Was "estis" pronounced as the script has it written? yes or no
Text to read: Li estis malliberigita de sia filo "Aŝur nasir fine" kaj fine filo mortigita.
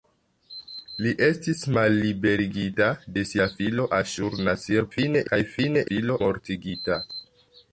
yes